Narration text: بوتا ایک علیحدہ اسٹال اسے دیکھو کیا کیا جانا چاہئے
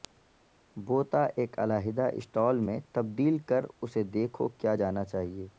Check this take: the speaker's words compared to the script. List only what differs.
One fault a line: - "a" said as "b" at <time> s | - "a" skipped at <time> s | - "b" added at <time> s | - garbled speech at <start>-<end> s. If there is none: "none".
- "میں تبدیل کر" added at 2.7 s
- "کیا" skipped at 4.7 s